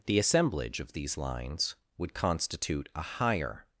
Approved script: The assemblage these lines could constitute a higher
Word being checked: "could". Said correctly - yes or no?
no